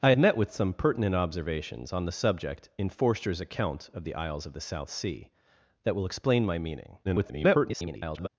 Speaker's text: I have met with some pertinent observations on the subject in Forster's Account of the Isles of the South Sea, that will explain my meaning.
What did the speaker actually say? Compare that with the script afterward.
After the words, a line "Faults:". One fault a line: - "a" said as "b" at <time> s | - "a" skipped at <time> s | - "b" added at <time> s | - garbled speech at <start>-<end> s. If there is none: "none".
I met with some pertinent observations on the subject in Forster's Account of the Isles of the South Sea, that will explain my meaning. [garbled]
Faults:
- "have" skipped at 0.1 s
- garbled speech at 7.0-8.3 s